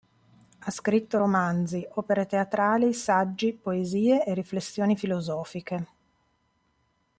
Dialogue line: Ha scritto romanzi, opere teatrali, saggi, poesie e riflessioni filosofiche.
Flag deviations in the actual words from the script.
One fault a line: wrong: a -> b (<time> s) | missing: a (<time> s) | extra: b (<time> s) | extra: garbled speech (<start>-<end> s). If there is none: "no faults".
no faults